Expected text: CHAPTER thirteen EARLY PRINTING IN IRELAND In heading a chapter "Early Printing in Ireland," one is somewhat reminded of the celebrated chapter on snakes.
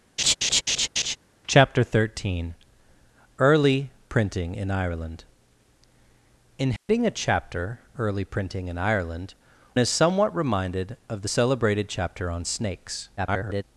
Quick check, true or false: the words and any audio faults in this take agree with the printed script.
false